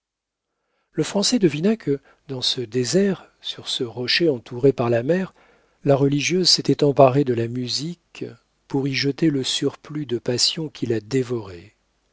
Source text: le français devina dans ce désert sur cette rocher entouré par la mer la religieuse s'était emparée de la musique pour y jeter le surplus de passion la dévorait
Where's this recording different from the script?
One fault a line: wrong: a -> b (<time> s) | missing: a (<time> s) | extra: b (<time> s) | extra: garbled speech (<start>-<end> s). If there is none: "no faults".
extra: que (1.8 s)
wrong: cette -> ce (3.7 s)
extra: qui (10.7 s)